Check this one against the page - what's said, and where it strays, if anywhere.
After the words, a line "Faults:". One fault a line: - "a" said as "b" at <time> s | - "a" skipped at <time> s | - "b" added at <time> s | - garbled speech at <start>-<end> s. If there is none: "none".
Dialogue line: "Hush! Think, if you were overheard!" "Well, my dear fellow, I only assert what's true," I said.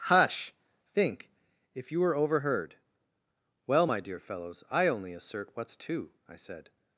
"Hush! Think, if you were overheard!" "Well, my dear fellows, I only assert what's two," I said.
Faults:
- "fellow" said as "fellows" at 4.2 s
- "true" said as "two" at 5.7 s